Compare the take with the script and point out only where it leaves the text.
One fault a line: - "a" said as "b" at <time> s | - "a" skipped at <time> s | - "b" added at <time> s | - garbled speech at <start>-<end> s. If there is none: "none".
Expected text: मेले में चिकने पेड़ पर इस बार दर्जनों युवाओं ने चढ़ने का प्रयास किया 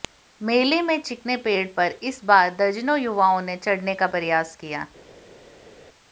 none